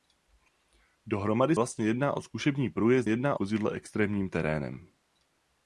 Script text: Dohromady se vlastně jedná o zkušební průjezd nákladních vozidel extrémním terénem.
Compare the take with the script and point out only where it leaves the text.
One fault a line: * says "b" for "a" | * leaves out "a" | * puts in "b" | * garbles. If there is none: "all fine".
* leaves out "se"
* says "jedná" for "nákladních"